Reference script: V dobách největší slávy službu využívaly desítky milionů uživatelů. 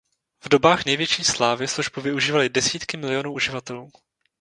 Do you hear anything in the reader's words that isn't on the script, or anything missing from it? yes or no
no